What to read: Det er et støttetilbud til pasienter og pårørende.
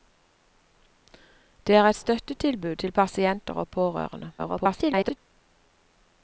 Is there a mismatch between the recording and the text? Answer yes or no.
yes